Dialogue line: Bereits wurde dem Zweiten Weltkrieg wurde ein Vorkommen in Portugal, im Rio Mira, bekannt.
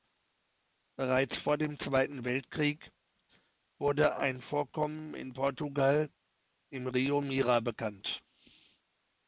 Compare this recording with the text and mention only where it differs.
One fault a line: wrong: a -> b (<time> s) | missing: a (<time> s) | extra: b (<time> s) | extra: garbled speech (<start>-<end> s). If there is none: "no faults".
wrong: wurde -> vor (1.4 s)